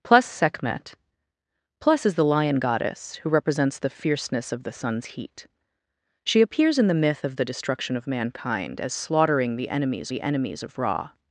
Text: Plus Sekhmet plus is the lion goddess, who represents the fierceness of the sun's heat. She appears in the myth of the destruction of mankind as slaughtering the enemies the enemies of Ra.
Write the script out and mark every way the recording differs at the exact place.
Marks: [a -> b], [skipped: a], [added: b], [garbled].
Plus Sekhmet plus is the lion goddess, who represents the fierceness of the sun's heat. She appears in the myth of the destruction of mankind as slaughtering the enemies the enemies of Ra.